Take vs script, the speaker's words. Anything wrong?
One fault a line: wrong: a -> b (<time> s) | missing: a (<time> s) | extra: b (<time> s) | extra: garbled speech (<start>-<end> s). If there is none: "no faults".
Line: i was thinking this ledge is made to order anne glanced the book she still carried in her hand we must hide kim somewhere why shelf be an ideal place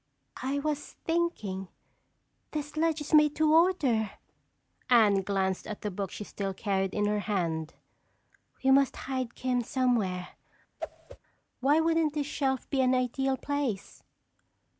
extra: at (5.7 s)
extra: wouldn't this (11.8 s)